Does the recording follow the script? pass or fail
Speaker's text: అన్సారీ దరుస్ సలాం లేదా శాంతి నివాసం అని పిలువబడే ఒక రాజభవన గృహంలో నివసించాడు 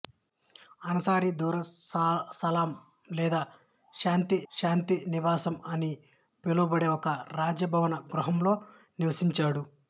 fail